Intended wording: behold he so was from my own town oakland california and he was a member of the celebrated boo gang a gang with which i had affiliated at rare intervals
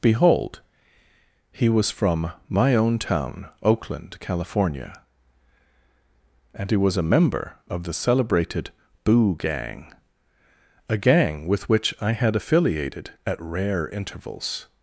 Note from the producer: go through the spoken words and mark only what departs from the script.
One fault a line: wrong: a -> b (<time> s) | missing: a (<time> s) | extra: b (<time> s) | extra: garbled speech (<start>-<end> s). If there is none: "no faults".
missing: so (1.7 s)